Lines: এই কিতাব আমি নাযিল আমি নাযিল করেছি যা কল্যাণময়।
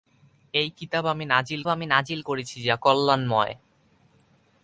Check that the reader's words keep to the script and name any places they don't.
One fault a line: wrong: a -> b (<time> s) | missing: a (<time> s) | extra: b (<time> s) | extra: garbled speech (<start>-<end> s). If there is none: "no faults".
no faults